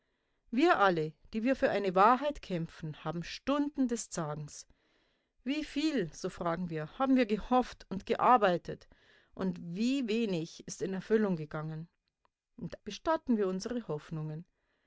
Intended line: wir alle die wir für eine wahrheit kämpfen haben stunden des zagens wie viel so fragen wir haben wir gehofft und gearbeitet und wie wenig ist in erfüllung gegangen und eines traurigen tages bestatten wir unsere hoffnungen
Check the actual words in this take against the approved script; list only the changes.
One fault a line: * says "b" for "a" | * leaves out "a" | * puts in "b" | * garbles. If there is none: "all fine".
* leaves out "eines traurigen tages"